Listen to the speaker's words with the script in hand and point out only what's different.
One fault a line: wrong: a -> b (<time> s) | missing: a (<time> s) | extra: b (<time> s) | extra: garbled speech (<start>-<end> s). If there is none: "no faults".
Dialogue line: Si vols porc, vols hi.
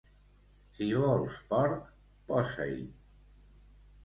wrong: vols -> posa (2.3 s)